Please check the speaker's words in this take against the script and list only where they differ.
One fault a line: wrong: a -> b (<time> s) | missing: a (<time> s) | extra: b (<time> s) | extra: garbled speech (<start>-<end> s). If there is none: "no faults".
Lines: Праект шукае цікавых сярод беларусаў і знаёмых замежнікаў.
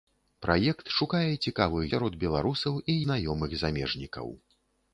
no faults